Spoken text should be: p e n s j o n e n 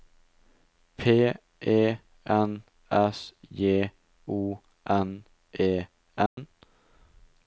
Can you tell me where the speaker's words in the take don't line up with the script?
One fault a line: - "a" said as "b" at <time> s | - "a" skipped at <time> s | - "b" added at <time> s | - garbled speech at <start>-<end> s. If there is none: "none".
none